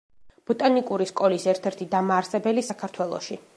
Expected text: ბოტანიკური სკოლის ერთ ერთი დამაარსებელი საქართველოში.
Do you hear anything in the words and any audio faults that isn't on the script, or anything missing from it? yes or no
no